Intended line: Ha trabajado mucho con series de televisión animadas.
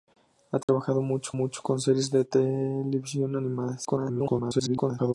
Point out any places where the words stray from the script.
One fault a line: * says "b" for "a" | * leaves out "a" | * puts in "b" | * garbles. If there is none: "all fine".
* puts in "mucho"
* garbles